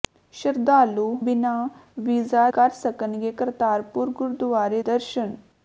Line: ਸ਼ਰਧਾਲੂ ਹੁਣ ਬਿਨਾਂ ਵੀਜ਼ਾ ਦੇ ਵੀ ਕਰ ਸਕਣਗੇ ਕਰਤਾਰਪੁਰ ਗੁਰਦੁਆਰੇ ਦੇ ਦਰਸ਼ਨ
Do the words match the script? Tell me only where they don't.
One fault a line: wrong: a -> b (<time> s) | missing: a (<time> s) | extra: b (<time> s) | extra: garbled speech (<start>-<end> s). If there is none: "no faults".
missing: ਹੁਣ (1.0 s)
missing: ਦੇ ਵੀ (2.5 s)
missing: ਦੇ (4.8 s)